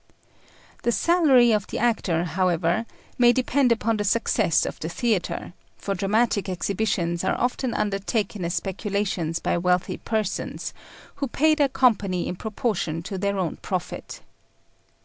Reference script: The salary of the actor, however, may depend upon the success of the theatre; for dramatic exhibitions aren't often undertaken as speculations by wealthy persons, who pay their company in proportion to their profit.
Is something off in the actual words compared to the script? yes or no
yes